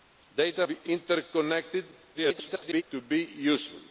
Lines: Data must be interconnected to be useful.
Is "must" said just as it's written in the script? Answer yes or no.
no